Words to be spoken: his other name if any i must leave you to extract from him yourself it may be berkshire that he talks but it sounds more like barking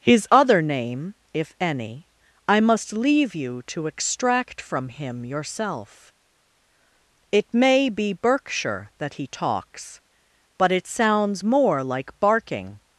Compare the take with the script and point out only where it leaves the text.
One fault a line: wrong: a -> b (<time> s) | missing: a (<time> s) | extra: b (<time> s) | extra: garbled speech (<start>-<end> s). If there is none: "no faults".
no faults